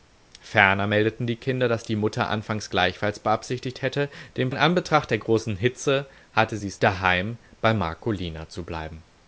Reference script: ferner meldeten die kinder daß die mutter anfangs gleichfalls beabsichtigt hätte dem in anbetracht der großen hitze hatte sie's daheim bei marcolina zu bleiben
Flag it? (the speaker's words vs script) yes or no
no